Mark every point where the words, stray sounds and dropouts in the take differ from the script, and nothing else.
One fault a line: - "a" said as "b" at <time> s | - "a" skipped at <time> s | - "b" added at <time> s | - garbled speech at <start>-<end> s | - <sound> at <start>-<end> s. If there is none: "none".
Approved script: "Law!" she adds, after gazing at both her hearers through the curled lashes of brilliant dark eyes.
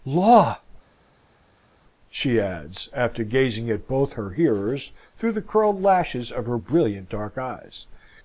- "her" added at 6.5 s